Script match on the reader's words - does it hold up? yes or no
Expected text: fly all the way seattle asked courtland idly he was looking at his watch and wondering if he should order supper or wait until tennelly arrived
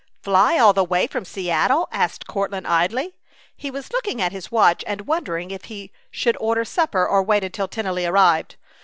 no